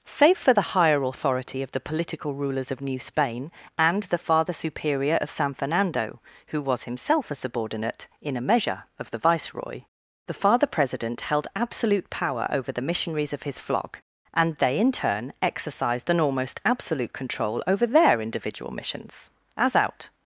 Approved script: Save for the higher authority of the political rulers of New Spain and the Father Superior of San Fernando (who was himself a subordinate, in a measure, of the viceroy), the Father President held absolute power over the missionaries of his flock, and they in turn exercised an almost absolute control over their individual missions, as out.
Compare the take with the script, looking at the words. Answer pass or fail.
pass